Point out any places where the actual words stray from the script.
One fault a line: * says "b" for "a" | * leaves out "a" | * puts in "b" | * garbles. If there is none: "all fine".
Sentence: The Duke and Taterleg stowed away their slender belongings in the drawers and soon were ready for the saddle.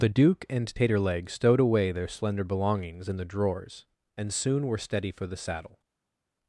* says "steady" for "ready"